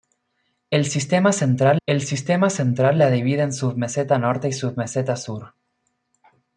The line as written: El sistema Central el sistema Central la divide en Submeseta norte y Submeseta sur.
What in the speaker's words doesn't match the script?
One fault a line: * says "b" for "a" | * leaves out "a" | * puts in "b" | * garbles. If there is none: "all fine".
all fine